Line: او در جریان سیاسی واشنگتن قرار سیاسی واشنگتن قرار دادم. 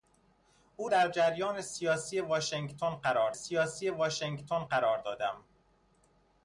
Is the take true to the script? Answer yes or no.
yes